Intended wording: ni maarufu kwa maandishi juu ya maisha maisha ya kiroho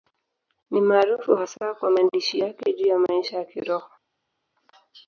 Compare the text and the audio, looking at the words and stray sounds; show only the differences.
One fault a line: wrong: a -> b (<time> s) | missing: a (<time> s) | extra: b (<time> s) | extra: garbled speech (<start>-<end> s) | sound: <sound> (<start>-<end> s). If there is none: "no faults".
extra: hasa (1.3 s)
extra: yake (2.4 s)
missing: maisha (3.4 s)